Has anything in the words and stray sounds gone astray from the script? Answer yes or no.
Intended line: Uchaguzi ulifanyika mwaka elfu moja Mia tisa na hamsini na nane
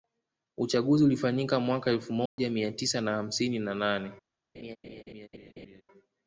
yes